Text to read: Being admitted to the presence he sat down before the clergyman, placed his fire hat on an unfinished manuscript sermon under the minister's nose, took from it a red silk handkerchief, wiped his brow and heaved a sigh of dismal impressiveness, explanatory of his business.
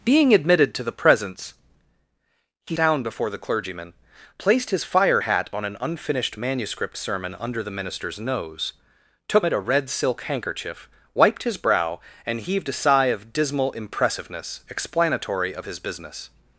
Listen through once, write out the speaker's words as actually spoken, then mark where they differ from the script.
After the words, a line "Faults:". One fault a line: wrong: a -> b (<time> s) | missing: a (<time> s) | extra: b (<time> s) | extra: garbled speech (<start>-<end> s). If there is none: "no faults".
Being admitted to the presence he down before the clergyman, placed his fire hat on an unfinished manuscript sermon under the minister's nose, took it a red silk handkerchief, wiped his brow and heaved a sigh of dismal impressiveness, explanatory of his business.
Faults:
missing: sat (2.8 s)
missing: from (9.5 s)